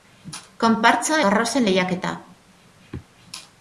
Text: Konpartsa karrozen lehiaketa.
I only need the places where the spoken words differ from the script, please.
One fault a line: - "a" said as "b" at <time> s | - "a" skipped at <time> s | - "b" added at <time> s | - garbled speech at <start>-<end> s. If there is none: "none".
none